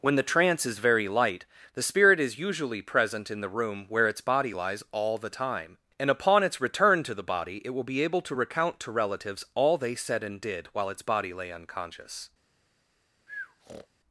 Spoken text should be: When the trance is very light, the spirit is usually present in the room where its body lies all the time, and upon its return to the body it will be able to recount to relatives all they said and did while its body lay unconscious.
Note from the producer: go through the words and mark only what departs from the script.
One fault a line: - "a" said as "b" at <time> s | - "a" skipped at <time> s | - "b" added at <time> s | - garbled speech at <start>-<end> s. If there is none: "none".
none